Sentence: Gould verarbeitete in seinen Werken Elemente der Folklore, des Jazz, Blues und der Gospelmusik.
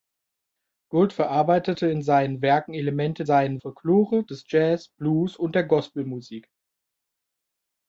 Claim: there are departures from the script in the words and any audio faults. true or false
true